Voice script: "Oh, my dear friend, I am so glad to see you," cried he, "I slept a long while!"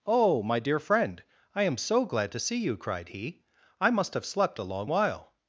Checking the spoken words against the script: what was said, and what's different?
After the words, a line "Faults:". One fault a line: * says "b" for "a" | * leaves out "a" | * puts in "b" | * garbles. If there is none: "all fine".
"Oh, my dear friend, I am so glad to see you," cried he, "I must have slept a long while!"
Faults:
* puts in "must have"